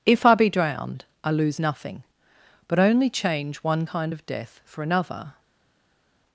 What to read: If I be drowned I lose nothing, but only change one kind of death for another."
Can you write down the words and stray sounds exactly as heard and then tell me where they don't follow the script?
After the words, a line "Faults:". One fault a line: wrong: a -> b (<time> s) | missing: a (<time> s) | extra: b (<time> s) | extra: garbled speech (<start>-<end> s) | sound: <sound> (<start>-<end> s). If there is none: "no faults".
If I be drowned I lose nothing, but only change one kind of death for another."
Faults:
no faults